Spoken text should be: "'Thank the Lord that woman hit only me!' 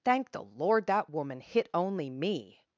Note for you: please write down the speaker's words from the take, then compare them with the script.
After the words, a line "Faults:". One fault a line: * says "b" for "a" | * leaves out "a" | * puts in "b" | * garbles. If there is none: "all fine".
"'Thank the Lord that woman hit only me!'
Faults:
all fine